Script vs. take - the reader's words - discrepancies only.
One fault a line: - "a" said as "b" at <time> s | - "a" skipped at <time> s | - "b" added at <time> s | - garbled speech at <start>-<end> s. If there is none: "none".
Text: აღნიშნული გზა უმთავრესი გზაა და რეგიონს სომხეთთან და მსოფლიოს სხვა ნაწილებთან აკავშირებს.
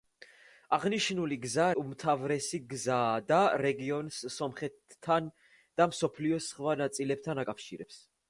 none